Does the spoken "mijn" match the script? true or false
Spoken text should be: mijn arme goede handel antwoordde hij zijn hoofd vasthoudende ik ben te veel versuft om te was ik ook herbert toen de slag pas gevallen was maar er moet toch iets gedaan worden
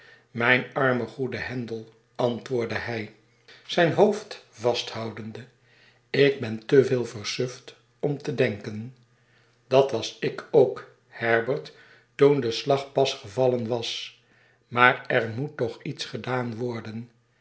true